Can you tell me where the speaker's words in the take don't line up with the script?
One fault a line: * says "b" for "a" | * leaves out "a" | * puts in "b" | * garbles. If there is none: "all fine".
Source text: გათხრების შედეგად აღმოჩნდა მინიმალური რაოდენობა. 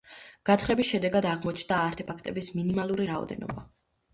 * puts in "არტეფაქტების"